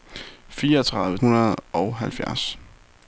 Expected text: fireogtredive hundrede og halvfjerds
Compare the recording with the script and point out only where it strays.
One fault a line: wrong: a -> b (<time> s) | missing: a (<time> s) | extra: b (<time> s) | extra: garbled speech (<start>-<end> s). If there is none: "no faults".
no faults